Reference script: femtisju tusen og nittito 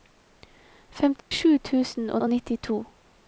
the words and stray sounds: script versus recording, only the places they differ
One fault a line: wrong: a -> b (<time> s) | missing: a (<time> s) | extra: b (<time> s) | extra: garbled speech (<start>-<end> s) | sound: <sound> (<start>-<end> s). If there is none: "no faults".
sound: dropout (1.2-1.3 s)
extra: og (2.2 s)